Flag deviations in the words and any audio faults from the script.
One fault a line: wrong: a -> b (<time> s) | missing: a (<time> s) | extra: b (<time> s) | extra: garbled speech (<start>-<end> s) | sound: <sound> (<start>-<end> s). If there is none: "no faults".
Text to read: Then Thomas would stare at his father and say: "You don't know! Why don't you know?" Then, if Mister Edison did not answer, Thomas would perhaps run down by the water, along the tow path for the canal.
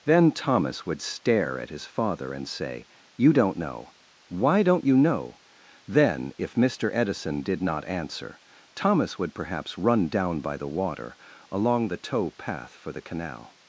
no faults